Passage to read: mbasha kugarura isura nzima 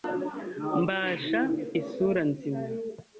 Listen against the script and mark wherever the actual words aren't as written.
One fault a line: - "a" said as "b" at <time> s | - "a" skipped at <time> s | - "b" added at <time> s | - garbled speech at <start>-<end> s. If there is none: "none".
- "kugarura" skipped at 1.4 s